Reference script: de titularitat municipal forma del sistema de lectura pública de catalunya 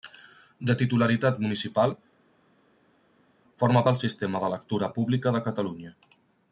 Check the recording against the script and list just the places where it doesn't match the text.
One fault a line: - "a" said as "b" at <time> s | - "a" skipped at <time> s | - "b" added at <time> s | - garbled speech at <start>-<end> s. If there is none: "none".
none